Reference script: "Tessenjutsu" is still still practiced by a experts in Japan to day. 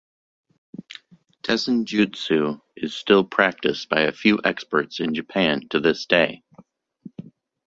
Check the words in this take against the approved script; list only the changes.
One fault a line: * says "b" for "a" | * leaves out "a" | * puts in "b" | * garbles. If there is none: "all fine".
* leaves out "still"
* puts in "few"
* puts in "this"